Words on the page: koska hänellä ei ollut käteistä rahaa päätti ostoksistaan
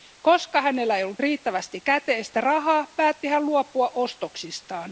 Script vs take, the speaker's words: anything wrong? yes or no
yes